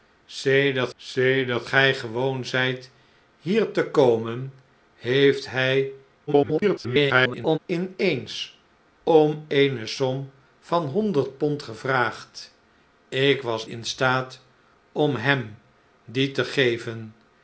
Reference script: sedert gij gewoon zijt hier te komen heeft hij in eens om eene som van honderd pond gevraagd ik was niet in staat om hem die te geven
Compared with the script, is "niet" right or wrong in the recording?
wrong